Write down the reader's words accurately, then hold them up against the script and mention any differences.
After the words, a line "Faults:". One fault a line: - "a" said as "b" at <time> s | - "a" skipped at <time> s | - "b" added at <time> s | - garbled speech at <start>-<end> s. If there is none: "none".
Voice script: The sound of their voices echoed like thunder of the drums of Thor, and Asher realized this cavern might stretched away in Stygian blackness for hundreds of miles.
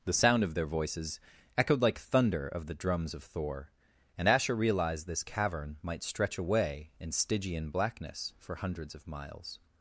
The sound of their voices echoed like thunder of the drums of Thor, and Asher realized this cavern might stretch away in Stygian blackness for hundreds of miles.
Faults:
- "stretched" said as "stretch" at 6.0 s